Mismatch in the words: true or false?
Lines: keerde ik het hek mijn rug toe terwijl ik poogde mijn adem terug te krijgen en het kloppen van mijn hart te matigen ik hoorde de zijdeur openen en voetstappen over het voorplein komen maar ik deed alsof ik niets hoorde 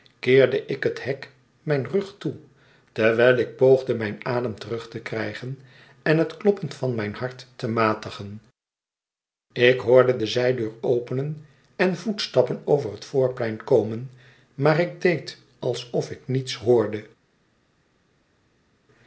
false